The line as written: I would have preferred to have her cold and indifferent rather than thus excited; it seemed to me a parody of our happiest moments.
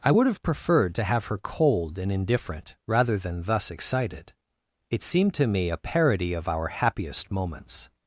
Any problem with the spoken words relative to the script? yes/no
no